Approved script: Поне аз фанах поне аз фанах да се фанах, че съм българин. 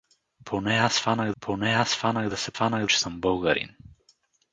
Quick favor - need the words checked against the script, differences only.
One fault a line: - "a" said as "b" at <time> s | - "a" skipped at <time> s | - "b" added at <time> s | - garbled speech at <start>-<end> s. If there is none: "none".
none